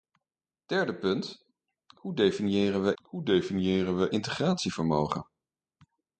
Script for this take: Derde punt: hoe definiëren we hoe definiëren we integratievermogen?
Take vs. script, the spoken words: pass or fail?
pass